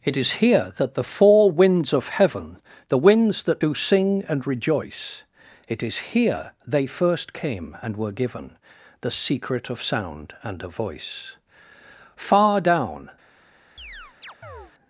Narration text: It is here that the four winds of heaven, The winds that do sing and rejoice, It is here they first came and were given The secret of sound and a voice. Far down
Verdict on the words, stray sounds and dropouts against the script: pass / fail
fail